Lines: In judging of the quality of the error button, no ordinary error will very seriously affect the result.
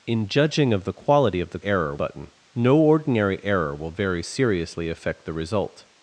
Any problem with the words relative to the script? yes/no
no